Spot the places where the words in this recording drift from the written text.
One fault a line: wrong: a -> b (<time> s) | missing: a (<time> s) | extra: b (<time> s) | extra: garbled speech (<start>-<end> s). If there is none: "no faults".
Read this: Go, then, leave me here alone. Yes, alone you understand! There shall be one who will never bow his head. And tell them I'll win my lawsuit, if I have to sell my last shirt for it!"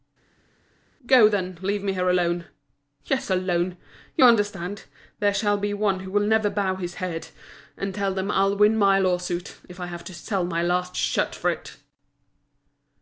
no faults